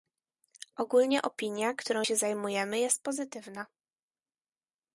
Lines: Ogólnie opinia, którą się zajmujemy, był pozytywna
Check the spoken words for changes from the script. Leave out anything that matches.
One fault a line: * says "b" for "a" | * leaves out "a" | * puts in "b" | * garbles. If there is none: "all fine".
* says "jest" for "był"